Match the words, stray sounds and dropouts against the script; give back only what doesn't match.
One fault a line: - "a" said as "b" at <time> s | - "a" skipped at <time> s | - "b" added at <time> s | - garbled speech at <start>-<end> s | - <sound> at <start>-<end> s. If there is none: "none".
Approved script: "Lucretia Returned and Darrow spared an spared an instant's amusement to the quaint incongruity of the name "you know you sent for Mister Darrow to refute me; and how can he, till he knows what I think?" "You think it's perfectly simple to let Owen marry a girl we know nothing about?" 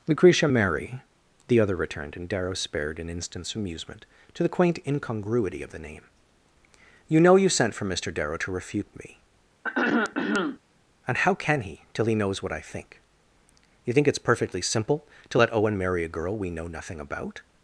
- "Mary the other" added at 0.4 s
- "spared an" skipped at 3.1 s
- throat clearing at 9.6-10.6 s